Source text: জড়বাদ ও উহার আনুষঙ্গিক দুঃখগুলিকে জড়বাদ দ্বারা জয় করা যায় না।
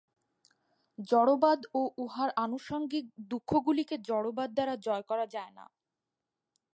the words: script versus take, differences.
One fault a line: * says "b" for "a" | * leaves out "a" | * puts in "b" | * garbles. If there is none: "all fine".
all fine